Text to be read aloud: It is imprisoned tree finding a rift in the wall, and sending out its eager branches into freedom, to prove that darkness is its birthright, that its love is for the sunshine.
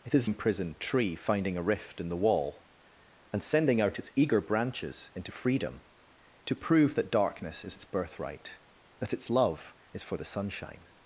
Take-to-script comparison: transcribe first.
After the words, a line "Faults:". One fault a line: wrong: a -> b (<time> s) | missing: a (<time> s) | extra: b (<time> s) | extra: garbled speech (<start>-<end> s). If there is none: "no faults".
It is imprisoned tree finding a rift in the wall, and sending out its eager branches into freedom, to prove that darkness is its birthright, that its love is for the sunshine.
Faults:
no faults